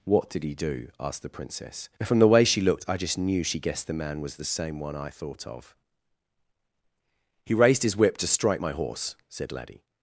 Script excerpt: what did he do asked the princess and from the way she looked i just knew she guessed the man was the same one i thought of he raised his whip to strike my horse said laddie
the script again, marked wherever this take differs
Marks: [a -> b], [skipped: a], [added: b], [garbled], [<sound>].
what did he do asked the princess [skipped: and] from the way she looked i just knew she guessed the man was the same one i thought of he raised his whip to strike my horse said laddie